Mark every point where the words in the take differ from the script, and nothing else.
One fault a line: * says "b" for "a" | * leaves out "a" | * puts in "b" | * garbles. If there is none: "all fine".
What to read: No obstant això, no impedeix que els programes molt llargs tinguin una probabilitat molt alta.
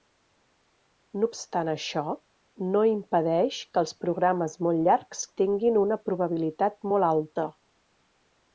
all fine